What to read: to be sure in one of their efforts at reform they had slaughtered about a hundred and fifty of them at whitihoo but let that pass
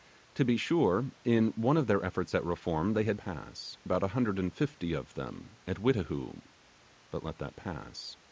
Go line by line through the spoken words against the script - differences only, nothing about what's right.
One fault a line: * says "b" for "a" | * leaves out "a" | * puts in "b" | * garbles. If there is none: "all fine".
* says "pass" for "slaughtered"